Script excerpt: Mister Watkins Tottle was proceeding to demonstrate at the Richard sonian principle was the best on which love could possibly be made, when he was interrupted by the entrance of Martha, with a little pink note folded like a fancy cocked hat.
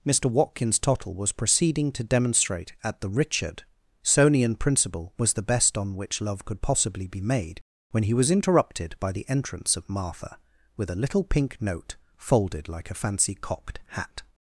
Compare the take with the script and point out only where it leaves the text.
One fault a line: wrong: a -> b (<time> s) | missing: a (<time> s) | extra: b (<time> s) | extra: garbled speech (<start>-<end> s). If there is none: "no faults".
no faults